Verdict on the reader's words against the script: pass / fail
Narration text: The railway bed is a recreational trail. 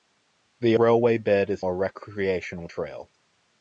pass